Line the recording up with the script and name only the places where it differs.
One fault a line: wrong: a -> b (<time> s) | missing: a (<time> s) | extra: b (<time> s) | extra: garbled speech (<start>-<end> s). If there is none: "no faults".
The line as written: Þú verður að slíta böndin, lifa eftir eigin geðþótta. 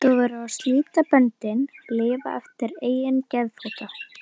no faults